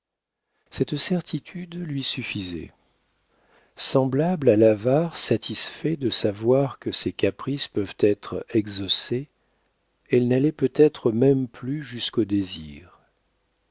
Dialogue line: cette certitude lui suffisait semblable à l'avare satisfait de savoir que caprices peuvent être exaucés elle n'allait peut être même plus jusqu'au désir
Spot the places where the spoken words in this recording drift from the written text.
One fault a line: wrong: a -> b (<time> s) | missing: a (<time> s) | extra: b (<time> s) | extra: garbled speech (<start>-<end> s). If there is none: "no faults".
extra: ses (6.9 s)